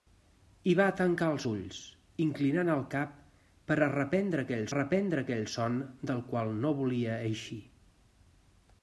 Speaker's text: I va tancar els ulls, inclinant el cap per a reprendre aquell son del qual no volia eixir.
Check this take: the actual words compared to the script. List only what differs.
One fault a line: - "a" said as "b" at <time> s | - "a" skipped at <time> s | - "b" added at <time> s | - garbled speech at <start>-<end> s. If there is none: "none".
- "reprendre aquell" added at 4.8 s